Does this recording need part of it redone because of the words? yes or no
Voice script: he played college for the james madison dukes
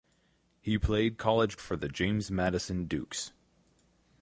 no